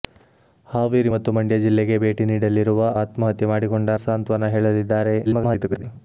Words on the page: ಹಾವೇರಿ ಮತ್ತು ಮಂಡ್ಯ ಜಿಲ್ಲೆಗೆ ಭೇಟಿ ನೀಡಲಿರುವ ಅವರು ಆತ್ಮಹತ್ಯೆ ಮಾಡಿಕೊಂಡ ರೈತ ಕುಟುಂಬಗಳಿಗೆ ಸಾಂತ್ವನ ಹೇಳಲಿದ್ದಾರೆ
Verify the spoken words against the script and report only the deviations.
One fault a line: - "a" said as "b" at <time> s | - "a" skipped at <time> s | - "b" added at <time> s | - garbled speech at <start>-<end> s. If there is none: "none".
- "ಅವರು" skipped at 2.8 s
- "ರೈತ ಕುಟುಂಬಗಳಿಗೆ" skipped at 4.0 s
- garbled speech at 5.2-5.8 s